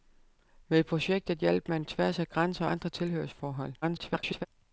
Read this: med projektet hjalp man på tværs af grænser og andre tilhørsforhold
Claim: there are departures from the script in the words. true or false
true